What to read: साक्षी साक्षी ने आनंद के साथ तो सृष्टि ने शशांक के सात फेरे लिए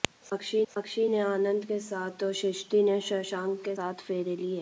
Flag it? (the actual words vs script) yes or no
no